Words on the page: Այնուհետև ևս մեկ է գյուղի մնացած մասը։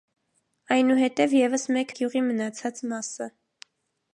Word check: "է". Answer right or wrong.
right